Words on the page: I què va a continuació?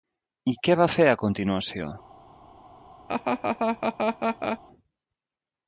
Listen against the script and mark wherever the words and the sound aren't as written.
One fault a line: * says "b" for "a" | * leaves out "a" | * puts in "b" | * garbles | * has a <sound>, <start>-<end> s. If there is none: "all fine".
* puts in "fer"
* has a laugh, 3.1-4.6 s